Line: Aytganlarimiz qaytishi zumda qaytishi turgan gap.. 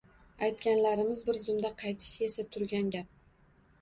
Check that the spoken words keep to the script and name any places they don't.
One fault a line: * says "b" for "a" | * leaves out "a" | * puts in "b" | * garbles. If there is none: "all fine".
* says "bir" for "qaytishi"
* puts in "esa"